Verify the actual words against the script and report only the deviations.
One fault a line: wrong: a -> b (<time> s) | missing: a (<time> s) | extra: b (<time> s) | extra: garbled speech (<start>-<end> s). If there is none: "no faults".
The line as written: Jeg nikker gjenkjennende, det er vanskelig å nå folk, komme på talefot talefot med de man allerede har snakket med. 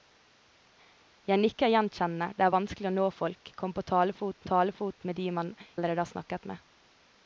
no faults